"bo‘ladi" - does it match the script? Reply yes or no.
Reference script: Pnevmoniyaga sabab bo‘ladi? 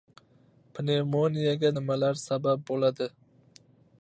yes